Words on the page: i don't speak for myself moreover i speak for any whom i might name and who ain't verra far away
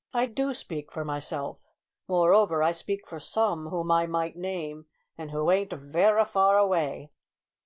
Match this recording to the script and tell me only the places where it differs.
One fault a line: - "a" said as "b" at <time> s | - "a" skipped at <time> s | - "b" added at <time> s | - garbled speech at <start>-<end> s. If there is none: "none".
- "don't" said as "do" at 0.2 s
- "any" said as "some" at 3.2 s